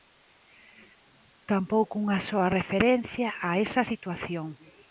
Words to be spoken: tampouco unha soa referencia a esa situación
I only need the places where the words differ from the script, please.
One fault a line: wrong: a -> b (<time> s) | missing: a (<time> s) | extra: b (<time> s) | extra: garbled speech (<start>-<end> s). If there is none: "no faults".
no faults